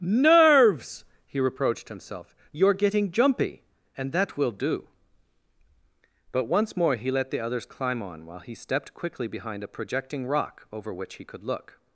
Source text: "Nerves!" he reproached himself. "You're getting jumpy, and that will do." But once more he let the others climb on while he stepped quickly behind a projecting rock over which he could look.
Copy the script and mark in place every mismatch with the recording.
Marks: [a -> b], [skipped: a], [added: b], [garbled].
"Nerves!" he reproached himself. "You're getting jumpy, and that will do." But once more he let the others climb on while he stepped quickly behind a projecting rock over which he could look.